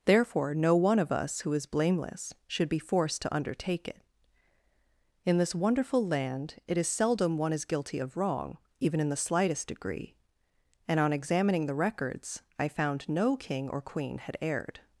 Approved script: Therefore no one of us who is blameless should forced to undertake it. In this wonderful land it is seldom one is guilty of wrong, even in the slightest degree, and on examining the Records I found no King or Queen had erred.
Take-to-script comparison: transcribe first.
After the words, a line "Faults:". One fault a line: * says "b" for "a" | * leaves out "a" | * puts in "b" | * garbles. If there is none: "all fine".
Therefore no one of us who is blameless should be forced to undertake it. In this wonderful land it is seldom one is guilty of wrong, even in the slightest degree, and on examining the Records I found no King or Queen had erred.
Faults:
* puts in "be"